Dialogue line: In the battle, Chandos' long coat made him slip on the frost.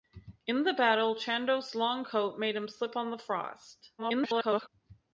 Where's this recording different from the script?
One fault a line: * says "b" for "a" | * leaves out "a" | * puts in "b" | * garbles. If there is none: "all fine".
* garbles